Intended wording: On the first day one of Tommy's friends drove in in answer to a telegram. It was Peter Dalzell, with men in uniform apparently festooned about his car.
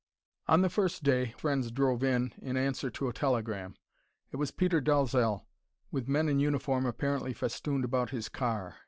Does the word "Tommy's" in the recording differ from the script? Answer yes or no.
yes